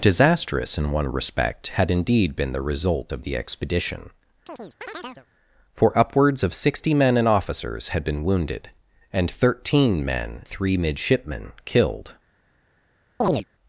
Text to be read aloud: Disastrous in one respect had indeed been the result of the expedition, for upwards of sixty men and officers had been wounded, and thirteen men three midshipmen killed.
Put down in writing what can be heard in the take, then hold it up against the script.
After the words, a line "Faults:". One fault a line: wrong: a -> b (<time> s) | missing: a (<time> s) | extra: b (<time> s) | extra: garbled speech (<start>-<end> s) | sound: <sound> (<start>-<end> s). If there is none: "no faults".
Disastrous in one respect had indeed been the result of the expedition, for upwards of sixty men and officers had been wounded, and thirteen men three midshipmen killed.
Faults:
sound: chirp (4.5-5.3 s)
sound: chirp (13.2-13.4 s)